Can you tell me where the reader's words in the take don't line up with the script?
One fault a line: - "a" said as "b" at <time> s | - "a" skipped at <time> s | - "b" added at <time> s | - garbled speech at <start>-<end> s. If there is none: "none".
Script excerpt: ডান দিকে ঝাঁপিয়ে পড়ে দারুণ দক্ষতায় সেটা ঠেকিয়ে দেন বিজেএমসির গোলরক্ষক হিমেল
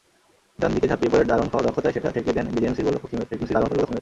- garbled speech at 3.3-4.0 s